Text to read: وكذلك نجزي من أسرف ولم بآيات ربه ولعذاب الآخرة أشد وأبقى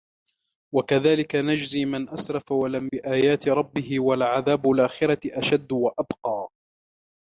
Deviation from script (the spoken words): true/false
false